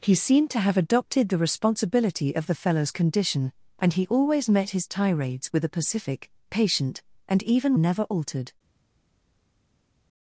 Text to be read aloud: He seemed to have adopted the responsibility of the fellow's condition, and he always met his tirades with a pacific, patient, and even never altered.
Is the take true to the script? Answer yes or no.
yes